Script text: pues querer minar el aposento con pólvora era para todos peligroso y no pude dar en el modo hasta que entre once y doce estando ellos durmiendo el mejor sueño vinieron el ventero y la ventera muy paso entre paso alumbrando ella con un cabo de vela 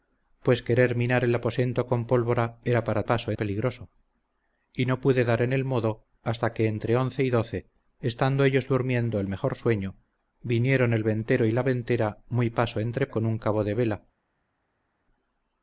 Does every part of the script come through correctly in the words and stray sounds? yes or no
no